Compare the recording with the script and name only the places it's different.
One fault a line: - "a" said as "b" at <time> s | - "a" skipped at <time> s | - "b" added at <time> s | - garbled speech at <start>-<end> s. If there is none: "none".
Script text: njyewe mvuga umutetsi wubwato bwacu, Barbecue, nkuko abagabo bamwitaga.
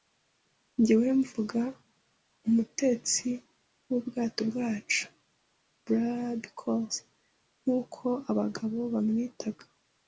none